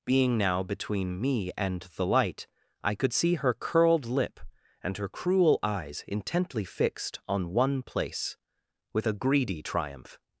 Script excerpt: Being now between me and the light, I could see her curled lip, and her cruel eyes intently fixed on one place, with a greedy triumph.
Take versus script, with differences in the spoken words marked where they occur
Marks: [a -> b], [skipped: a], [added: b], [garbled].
Being now between me and the light, I could see her curled lip, and her cruel eyes intently fixed on one place, with a greedy triumph.